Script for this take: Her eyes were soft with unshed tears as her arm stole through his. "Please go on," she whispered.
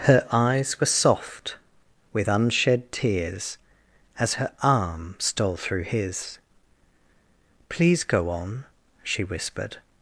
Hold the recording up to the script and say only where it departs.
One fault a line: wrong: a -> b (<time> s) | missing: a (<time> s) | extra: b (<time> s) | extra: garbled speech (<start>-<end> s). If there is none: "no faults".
no faults